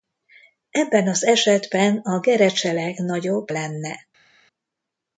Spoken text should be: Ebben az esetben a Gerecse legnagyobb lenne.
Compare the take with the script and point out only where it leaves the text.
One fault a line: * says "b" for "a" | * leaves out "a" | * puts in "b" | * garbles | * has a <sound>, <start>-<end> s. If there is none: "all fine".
all fine